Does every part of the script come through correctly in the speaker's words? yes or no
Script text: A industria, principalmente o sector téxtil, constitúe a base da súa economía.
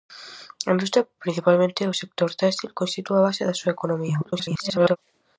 no